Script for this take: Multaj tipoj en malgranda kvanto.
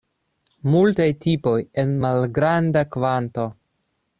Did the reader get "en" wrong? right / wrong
right